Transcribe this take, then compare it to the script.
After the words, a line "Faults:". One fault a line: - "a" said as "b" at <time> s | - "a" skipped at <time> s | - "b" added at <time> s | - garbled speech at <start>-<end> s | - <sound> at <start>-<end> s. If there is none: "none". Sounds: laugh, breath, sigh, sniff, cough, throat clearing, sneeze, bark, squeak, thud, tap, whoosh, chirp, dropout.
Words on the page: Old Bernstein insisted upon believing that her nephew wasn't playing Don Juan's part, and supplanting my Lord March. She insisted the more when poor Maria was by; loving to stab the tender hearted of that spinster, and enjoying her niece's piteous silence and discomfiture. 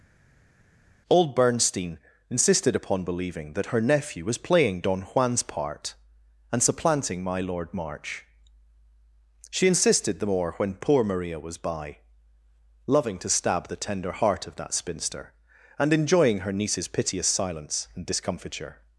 Old Bernstein insisted upon believing that her nephew was playing Don Juan's part, and supplanting my Lord March. She insisted the more when poor Maria was by; loving to stab the tender heart of that spinster, and enjoying her niece's piteous silence and discomfiture.
Faults:
- "wasn't" said as "was" at 4.2 s
- "hearted" said as "heart" at 14.1 s